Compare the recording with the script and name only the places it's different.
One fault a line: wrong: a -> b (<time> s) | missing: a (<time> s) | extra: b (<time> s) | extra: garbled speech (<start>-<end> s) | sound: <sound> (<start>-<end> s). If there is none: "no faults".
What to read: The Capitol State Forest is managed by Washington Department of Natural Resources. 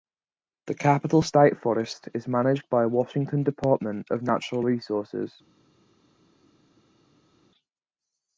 no faults